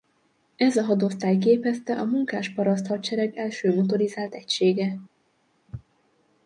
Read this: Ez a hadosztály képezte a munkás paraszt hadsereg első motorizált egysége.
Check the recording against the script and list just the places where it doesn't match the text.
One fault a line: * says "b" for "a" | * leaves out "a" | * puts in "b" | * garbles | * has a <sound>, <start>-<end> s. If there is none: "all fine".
all fine